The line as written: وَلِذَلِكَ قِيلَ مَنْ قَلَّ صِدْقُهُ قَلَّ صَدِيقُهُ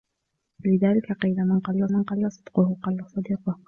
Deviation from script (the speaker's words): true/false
true